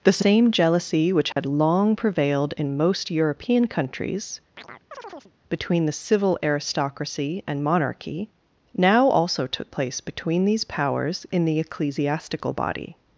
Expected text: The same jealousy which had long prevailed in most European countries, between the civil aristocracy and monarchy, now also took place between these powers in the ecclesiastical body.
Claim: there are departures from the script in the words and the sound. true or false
true